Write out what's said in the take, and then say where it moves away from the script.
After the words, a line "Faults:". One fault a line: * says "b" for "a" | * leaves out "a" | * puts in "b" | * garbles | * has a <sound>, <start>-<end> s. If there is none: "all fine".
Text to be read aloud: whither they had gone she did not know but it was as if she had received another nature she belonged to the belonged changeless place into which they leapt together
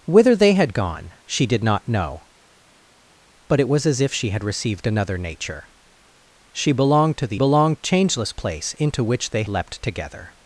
whither they had gone she did not know but it was as if she had received another nature she belonged to the belonged changeless place into which they leapt together
Faults:
all fine